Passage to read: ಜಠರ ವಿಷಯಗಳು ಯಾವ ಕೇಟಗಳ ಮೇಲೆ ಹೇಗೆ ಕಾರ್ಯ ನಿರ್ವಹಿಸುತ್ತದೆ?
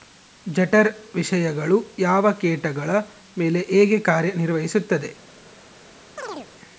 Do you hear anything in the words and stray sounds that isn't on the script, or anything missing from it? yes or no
yes